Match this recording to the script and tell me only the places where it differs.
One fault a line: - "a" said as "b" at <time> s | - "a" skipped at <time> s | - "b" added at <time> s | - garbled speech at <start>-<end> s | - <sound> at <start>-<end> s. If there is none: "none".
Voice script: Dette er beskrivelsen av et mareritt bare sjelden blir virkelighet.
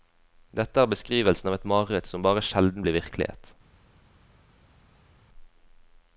- "som" added at 2.1 s